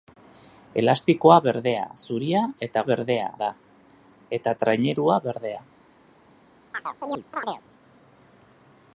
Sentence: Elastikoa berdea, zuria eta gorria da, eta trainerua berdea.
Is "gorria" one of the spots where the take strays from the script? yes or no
yes